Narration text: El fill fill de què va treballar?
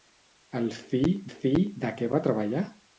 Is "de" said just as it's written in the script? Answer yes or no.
yes